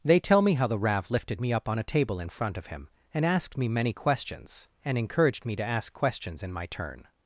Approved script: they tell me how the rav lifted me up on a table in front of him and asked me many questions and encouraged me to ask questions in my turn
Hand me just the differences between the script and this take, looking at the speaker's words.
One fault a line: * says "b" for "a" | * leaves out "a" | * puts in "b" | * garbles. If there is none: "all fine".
all fine